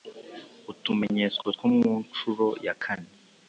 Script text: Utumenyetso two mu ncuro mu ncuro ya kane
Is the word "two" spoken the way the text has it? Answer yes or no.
yes